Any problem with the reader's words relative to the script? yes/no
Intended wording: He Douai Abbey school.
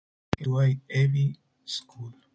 no